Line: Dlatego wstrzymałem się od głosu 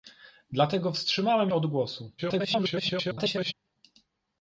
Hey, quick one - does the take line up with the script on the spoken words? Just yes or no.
no